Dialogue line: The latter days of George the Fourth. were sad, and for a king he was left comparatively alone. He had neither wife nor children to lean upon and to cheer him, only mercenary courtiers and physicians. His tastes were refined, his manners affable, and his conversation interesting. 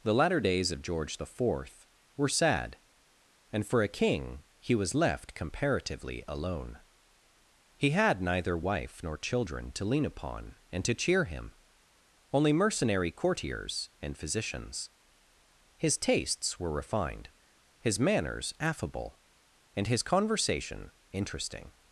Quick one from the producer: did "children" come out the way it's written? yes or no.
yes